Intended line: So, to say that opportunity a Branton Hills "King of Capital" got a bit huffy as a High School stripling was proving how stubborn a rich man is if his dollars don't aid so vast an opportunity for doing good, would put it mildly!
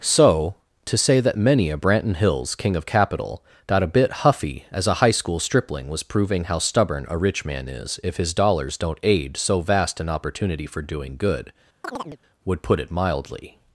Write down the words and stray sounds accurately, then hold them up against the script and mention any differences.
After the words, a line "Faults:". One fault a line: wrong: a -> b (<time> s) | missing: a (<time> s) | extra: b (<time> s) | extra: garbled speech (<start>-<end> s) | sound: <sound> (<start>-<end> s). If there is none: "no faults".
So, to say that many a Branton Hills "King of Capital" got a bit huffy as a High School stripling was proving how stubborn a rich man is if his dollars don't aid so vast an opportunity for doing good, would put it mildly!
Faults:
wrong: opportunity -> many (1.4 s)
sound: chirp (11.8-12.2 s)